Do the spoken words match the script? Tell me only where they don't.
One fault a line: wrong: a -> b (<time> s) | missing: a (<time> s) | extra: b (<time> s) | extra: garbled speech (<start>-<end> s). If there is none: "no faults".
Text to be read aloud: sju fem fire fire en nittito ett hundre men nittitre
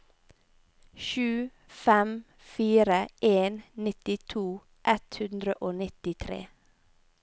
missing: fire (3.1 s)
wrong: men -> og (5.5 s)